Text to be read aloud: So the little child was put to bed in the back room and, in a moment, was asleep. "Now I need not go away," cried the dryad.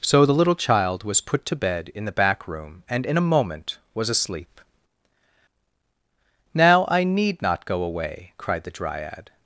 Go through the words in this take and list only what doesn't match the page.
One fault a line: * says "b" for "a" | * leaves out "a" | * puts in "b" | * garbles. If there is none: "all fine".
all fine